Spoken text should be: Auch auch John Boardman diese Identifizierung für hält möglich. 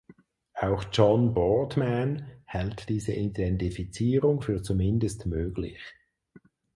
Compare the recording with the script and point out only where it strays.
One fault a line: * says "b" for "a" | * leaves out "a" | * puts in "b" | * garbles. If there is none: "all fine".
* leaves out "auch"
* puts in "hält"
* says "zumindest" for "hält"